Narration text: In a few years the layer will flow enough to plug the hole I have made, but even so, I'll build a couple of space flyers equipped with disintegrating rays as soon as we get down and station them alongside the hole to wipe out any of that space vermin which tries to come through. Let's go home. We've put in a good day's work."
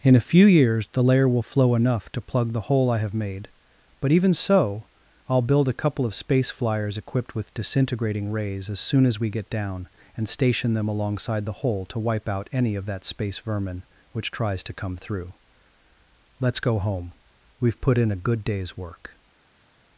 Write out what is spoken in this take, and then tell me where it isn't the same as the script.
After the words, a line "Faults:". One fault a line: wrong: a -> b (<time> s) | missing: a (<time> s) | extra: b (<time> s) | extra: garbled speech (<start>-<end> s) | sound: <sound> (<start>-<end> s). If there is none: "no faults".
In a few years the layer will flow enough to plug the hole I have made, but even so, I'll build a couple of space flyers equipped with disintegrating rays as soon as we get down and station them alongside the hole to wipe out any of that space vermin which tries to come through. Let's go home. We've put in a good day's work."
Faults:
no faults